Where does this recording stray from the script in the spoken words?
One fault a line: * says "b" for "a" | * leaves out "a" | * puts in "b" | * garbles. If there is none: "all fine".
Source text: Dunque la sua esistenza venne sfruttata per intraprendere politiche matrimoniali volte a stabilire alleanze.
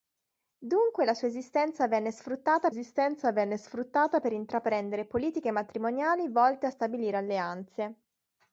* puts in "esistenza venne sfruttata"